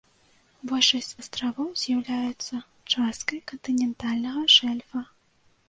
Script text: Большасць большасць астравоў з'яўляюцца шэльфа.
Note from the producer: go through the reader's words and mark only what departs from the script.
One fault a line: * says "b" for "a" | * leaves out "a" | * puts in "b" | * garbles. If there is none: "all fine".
* leaves out "большасць"
* puts in "часткай кантынентальнага"